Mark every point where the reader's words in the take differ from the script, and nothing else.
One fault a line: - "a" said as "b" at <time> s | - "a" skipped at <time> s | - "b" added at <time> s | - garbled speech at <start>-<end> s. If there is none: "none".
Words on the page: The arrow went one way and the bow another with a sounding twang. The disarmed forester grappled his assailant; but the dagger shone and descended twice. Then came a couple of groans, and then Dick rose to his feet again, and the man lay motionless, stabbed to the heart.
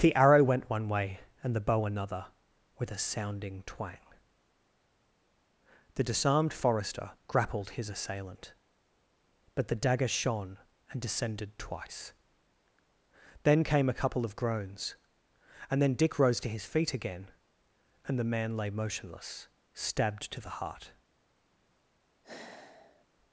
none